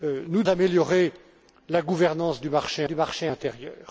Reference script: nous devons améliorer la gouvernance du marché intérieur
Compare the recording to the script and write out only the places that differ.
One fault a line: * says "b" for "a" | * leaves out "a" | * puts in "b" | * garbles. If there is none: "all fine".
* leaves out "devons"
* puts in "du marché"